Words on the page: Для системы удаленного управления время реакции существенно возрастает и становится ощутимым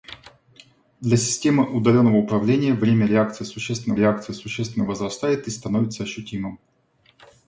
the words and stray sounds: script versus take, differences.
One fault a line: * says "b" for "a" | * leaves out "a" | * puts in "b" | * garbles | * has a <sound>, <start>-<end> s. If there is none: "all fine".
* puts in "реакции существенно"